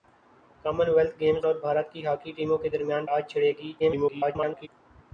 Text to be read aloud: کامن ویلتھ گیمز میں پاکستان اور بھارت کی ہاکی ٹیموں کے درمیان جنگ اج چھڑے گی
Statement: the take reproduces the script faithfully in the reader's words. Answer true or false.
false